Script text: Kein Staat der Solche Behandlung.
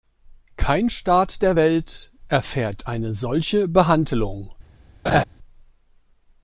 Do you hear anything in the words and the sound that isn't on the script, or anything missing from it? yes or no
yes